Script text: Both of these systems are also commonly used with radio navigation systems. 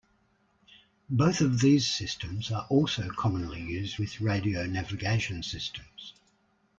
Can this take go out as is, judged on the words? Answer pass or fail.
pass